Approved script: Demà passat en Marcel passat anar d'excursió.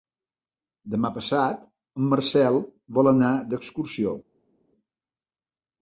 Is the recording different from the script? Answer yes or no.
yes